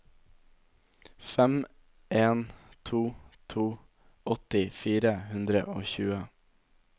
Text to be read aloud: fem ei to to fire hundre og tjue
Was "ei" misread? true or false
true